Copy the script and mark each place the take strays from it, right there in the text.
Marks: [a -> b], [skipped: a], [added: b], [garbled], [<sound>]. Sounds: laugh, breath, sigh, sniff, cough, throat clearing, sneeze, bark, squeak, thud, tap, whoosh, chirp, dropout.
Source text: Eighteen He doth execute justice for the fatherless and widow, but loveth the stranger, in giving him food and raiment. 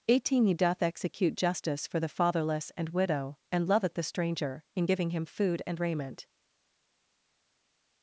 Eighteen He doth execute justice for the fatherless and widow, [but -> and] loveth the stranger, in giving him food and raiment.